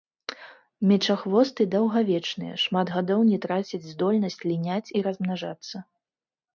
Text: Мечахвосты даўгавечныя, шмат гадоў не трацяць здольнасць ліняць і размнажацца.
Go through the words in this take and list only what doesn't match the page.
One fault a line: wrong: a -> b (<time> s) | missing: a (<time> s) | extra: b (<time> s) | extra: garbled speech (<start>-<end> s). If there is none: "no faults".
no faults